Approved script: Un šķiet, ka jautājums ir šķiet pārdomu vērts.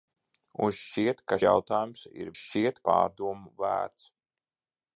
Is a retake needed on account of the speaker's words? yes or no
no